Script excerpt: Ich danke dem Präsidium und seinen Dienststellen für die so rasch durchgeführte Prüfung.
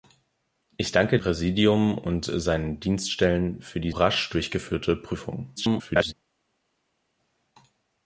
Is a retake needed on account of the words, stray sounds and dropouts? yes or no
yes